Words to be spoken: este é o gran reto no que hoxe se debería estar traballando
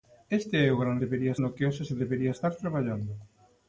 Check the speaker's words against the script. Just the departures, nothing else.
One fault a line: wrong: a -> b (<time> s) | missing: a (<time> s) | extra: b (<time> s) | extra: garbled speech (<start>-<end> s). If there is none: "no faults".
wrong: reto -> debería (1.0 s)